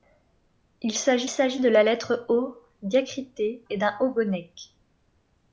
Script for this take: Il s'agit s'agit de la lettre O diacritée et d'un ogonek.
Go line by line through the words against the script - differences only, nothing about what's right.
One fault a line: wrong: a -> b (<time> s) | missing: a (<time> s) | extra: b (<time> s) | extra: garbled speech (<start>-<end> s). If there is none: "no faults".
no faults